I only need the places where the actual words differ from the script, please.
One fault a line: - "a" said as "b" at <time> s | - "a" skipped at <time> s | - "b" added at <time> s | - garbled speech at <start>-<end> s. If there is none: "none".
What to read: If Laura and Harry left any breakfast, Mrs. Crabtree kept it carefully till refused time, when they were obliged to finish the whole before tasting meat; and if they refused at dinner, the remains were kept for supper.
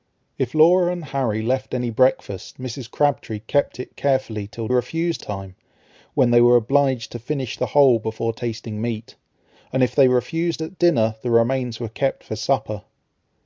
none